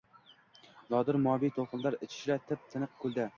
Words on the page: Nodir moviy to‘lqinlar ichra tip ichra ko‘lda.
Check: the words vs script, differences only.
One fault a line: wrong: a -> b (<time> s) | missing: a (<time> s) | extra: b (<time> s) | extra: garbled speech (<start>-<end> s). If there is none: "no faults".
wrong: ichra -> tiniq (2.8 s)